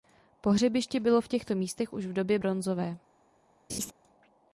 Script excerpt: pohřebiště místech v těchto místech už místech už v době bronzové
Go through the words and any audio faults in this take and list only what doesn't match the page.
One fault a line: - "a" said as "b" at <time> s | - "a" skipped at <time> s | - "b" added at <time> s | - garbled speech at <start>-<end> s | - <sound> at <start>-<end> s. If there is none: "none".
- "místech" said as "bylo" at 1.0 s
- "místech už" skipped at 2.0 s
- laugh at 3.7-3.9 s